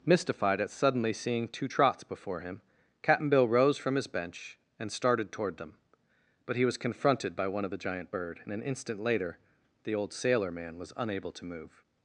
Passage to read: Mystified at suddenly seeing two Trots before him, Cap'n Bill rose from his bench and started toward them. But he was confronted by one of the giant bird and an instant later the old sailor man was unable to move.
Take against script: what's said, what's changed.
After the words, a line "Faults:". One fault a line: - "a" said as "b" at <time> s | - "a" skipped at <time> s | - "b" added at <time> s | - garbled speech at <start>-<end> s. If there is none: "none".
Mystified at suddenly seeing two Trots before him, Cap'n Bill rose from his bench and started toward them. But he was confronted by one of the giant bird and an instant later the old sailor man was unable to move.
Faults:
none